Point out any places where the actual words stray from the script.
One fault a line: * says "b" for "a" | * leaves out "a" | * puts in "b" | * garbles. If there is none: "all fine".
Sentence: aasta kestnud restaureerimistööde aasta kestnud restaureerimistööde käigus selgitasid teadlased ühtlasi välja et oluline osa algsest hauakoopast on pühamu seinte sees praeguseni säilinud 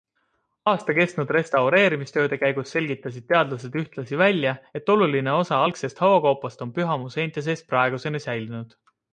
* leaves out "aasta kestnud restaureerimistööde"